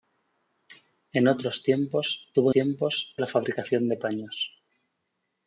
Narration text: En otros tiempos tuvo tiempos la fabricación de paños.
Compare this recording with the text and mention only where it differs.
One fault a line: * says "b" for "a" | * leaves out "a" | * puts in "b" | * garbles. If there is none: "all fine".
all fine